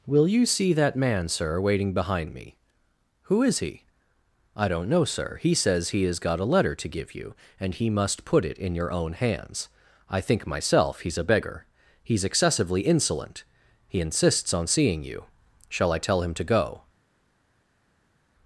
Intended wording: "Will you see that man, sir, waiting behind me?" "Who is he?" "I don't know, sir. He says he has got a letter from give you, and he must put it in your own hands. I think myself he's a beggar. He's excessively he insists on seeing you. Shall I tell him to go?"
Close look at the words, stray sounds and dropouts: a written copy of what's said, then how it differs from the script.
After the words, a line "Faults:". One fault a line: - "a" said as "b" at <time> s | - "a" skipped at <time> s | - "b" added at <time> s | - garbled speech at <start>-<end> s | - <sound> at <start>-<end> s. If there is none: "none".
"Will you see that man, sir, waiting behind me?" "Who is he?" "I don't know, sir. He says he has got a letter to give you, and he must put it in your own hands. I think myself he's a beggar. He's excessively insolent he insists on seeing you. Shall I tell him to go?"
Faults:
- "from" said as "to" at 6.8 s
- "insolent" added at 12.8 s